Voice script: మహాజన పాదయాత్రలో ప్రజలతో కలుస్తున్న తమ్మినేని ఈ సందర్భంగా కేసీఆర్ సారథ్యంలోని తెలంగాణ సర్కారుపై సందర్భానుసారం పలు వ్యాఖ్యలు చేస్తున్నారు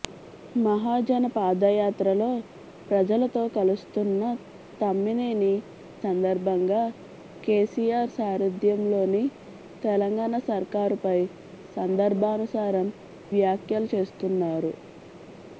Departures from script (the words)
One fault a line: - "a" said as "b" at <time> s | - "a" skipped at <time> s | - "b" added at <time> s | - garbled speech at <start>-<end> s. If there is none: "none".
- "ఈ" skipped at 5.5 s
- "పలు" skipped at 12.9 s